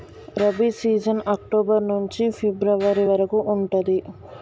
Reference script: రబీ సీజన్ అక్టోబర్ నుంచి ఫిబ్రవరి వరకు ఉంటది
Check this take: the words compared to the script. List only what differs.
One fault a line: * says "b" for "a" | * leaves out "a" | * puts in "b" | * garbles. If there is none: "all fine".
all fine